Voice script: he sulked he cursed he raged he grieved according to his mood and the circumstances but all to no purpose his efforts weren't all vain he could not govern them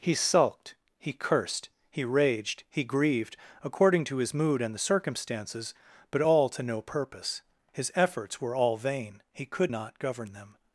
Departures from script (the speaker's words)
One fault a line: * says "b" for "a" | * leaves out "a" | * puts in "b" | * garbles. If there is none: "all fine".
* says "were" for "weren't"